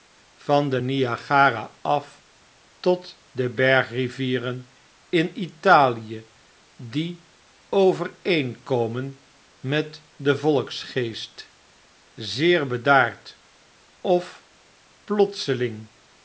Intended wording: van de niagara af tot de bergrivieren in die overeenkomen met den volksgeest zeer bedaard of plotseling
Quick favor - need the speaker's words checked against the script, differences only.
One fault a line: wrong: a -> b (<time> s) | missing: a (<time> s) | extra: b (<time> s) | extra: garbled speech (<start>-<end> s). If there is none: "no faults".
extra: italie (5.4 s)